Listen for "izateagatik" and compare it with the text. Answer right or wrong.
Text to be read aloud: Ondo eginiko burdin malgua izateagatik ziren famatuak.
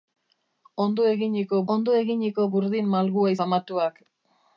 wrong